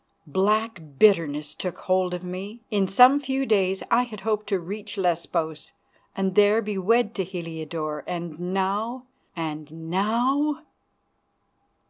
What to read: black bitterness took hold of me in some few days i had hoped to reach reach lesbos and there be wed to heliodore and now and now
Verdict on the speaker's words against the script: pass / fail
fail